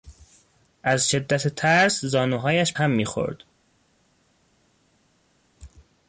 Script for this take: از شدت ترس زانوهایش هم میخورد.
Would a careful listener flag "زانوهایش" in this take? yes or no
no